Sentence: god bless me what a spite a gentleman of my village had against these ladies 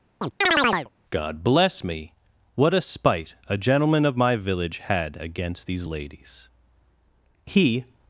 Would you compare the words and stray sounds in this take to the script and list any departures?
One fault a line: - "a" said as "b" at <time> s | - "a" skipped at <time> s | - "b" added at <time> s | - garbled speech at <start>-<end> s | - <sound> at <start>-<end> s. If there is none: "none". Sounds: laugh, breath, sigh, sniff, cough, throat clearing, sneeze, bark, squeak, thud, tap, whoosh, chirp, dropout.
- chirp at 0.2-0.9 s
- "he" added at 7.5 s